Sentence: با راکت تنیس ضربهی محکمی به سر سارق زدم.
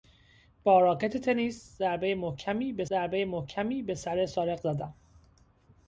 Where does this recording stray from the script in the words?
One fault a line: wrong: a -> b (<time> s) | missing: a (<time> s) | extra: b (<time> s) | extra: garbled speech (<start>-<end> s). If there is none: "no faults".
extra: ضربهی محکمی به (2.9 s)